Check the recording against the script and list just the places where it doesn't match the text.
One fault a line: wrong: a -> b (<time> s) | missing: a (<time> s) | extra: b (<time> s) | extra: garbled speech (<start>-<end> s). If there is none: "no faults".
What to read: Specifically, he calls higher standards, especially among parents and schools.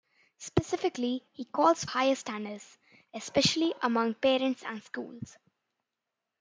no faults